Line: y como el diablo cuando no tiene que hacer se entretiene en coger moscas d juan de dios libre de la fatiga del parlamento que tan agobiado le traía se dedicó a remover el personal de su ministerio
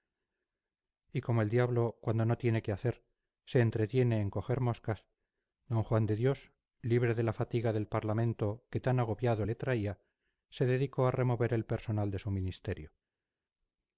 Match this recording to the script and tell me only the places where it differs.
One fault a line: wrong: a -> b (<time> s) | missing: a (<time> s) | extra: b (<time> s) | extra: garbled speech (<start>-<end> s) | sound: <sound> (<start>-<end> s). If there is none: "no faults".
no faults